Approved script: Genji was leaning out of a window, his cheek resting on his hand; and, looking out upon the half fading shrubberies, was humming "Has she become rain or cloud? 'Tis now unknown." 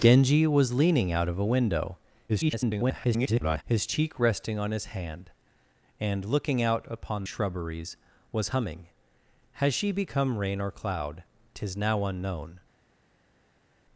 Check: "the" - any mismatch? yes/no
yes